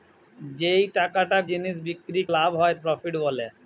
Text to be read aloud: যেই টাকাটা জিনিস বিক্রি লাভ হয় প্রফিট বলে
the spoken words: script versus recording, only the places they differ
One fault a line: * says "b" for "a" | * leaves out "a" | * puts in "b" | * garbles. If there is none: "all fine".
all fine